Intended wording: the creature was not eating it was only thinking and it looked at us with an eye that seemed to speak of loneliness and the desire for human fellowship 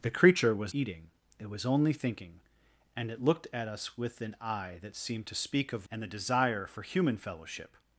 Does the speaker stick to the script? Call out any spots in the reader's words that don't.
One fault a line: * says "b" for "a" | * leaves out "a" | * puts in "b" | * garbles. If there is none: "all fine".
* leaves out "not"
* leaves out "loneliness"